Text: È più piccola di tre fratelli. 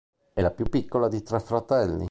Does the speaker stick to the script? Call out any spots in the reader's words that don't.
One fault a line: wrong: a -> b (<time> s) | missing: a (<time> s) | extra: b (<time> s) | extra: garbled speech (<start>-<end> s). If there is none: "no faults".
extra: la (0.4 s)